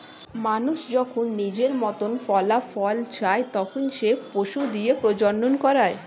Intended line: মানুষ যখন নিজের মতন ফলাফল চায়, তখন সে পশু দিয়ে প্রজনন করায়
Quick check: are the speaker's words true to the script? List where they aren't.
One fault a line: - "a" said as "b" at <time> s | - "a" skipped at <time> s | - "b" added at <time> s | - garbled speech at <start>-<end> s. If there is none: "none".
none